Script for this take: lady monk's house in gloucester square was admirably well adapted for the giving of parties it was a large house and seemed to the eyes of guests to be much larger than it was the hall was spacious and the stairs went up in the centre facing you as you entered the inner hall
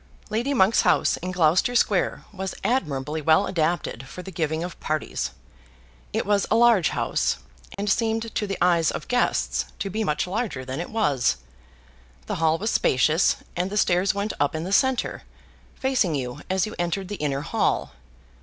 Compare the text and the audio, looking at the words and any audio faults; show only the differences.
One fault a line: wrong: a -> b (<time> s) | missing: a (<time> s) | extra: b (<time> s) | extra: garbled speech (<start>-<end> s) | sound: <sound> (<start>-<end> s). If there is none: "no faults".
sound: dropout (7.7-7.8 s)